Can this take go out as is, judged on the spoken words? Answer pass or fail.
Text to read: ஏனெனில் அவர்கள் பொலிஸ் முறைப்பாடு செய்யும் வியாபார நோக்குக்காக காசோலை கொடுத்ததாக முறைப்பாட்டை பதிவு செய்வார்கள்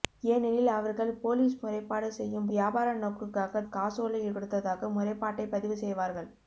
pass